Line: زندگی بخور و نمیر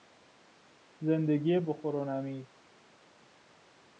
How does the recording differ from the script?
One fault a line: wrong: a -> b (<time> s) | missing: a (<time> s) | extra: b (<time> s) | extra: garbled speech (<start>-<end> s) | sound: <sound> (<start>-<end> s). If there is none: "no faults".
no faults